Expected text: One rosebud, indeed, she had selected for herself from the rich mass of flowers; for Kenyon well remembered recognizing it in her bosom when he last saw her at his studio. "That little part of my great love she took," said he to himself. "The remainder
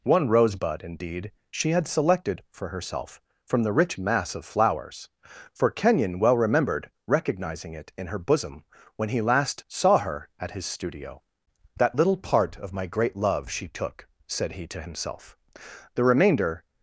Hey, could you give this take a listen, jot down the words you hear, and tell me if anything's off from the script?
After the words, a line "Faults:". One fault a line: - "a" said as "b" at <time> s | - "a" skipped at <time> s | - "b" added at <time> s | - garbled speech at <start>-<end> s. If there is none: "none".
One rosebud, indeed, she had selected for herself from the rich mass of flowers; for Kenyon well remembered recognizing it in her bosom when he last saw her at his studio. "That little part of my great love she took," said he to himself. "The remainder
Faults:
none